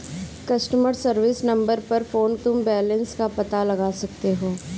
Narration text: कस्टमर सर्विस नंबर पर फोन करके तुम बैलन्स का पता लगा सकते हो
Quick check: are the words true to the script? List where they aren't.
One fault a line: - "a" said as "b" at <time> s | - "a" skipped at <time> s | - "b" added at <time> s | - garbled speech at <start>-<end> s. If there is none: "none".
- "करके" skipped at 2.4 s